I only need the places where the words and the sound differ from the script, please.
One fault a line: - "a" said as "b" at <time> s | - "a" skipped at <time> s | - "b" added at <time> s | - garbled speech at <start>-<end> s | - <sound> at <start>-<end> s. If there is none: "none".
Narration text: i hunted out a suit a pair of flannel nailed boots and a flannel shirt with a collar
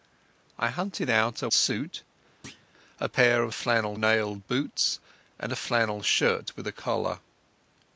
- thud at 2.4-2.7 s